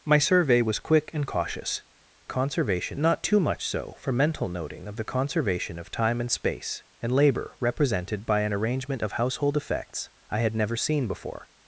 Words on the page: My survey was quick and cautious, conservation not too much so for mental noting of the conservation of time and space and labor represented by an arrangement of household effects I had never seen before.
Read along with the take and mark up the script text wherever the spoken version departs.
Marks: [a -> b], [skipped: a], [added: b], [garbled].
My survey was quick and cautious, conservation not too much so for mental noting of the conservation of time and space and labor represented by an arrangement of household effects I had never seen before.